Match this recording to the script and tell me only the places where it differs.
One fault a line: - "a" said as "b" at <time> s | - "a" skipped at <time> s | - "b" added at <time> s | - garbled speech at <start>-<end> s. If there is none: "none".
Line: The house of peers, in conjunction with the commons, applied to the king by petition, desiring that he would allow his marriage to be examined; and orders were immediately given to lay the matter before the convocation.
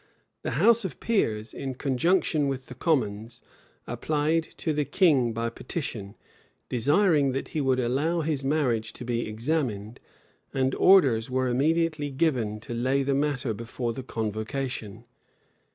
none